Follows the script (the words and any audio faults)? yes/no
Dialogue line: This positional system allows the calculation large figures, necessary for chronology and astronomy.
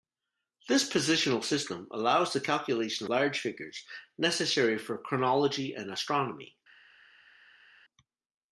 yes